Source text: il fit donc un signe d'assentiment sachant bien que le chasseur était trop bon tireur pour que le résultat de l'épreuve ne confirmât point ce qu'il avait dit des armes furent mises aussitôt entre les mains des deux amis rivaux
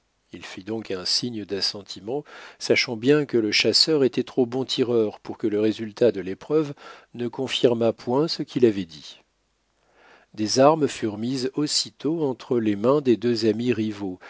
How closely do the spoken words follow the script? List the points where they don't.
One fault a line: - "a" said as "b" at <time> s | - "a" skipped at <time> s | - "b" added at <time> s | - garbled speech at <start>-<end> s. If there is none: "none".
none